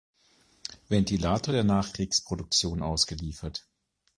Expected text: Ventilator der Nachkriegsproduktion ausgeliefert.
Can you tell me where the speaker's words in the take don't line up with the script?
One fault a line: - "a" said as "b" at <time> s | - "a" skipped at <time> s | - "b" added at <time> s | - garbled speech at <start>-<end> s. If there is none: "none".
none